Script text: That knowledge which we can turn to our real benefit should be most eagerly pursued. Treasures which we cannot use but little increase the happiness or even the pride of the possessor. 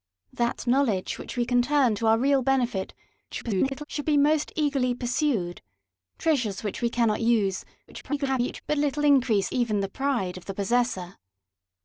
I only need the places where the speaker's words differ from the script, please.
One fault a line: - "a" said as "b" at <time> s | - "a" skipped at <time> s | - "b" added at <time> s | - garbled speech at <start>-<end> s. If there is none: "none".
- garbled speech at 3.3-3.8 s
- garbled speech at 7.9-8.6 s
- "the happiness or" skipped at 9.5 s